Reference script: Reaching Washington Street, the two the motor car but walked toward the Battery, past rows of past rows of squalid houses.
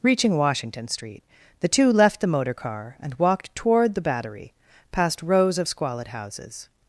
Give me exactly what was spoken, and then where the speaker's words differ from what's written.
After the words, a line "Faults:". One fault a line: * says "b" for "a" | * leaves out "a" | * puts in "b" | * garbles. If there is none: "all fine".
Reaching Washington Street, the two left the motor car and walked toward the Battery, past rows of squalid houses.
Faults:
* puts in "left"
* says "and" for "but"
* leaves out "past rows of"